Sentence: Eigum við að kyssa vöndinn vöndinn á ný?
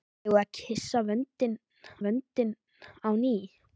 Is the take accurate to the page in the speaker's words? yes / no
yes